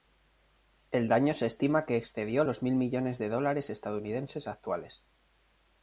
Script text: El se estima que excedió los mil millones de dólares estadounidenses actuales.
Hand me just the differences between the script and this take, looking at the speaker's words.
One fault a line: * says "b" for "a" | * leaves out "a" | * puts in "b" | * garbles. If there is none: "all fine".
* puts in "daño"